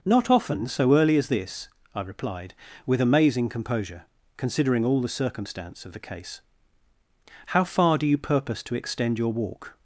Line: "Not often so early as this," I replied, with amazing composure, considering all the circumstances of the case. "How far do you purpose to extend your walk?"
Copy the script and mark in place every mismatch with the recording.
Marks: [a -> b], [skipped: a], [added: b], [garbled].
"Not often so early as this," I replied, with amazing composure, considering all the [circumstances -> circumstance] of the case. "How far do you purpose to extend your walk?"